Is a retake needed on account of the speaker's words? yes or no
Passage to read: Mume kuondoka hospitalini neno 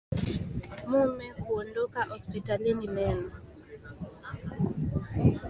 no